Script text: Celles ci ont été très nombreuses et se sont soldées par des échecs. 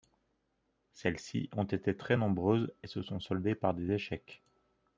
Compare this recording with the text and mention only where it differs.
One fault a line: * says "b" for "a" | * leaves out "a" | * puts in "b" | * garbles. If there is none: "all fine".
all fine